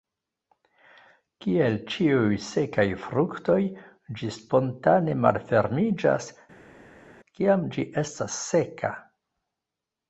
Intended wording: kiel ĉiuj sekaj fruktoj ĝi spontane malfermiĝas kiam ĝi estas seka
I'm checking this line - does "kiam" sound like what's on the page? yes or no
yes